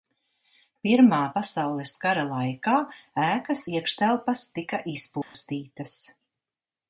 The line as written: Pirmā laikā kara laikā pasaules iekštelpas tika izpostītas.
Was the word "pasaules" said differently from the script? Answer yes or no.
yes